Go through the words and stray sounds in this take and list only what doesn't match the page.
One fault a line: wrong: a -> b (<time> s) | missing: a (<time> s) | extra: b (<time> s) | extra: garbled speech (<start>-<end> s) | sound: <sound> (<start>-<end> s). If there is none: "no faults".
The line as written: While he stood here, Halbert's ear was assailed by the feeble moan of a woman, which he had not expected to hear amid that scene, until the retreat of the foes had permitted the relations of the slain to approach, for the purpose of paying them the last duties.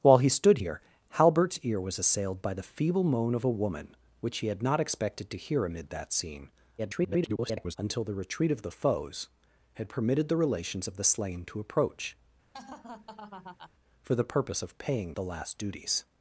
extra: garbled speech (6.8-7.8 s)
sound: laugh (12.5-13.7 s)
missing: them (15.1 s)